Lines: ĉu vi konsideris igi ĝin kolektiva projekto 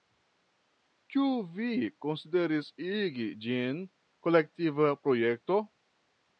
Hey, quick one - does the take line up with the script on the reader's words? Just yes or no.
yes